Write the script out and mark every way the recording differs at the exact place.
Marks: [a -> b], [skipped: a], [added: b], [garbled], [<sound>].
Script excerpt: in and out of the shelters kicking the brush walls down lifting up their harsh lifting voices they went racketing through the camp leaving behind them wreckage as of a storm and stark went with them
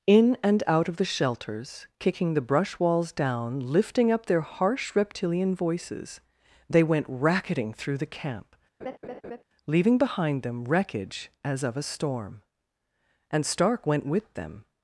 in and out of the shelters kicking the brush walls down lifting up their harsh [lifting -> reptilian] voices they went racketing through the camp [laugh] leaving behind them wreckage as of a storm and stark went with them